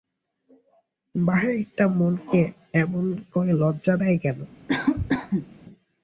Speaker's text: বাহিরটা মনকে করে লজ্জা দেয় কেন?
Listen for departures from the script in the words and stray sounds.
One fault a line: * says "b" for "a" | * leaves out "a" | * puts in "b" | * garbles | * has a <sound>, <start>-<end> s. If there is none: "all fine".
* puts in "এমন"
* has a cough, 4.7-5.5 s